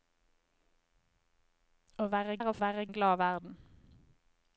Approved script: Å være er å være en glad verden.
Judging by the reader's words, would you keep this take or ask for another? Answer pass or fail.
pass